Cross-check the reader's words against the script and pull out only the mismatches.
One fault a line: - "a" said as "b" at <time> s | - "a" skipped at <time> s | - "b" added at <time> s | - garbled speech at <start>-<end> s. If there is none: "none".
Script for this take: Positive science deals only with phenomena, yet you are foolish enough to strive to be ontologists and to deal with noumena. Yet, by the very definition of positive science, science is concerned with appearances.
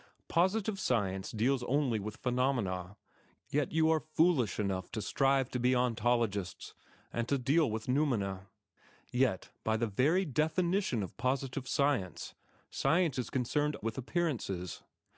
none